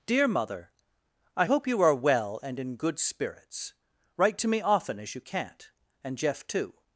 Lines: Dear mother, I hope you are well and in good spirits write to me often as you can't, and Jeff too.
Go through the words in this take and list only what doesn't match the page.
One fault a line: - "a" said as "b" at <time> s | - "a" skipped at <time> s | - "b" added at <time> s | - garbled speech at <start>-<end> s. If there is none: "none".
none